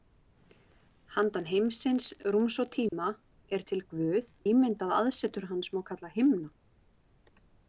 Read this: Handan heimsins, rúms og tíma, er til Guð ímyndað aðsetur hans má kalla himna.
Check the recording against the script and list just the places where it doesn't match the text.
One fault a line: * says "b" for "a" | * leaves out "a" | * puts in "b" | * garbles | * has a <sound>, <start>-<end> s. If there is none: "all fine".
* has a dropout, 2.9-2.9 s